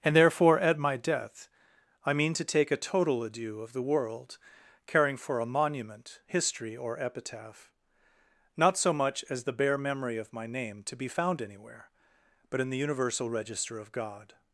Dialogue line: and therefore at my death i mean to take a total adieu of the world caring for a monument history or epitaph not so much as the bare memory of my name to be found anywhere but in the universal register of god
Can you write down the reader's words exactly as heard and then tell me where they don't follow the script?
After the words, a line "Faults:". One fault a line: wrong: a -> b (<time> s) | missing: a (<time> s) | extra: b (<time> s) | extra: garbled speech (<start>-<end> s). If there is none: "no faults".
and therefore at my death i mean to take a total adieu of the world caring for a monument history or epitaph not so much as the bare memory of my name to be found anywhere but in the universal register of god
Faults:
no faults